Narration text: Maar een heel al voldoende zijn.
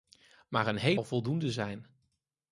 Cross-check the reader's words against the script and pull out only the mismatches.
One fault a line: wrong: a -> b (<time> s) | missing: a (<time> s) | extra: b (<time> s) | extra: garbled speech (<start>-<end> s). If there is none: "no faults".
no faults